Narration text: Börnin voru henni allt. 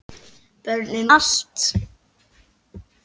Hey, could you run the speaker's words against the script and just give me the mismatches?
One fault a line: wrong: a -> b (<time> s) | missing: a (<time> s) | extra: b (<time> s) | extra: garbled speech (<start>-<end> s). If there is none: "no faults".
missing: voru henni (1.1 s)